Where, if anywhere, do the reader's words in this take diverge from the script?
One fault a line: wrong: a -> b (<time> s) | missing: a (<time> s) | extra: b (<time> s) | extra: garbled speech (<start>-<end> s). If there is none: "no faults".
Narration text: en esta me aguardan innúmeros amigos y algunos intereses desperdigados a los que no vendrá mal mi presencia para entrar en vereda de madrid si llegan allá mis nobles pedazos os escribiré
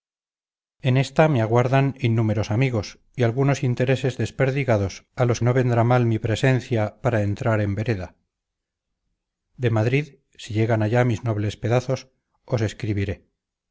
missing: que (5.4 s)